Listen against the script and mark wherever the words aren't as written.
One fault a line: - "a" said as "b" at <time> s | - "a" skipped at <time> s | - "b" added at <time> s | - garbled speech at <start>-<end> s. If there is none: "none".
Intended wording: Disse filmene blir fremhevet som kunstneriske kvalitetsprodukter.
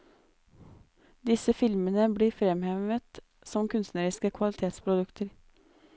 none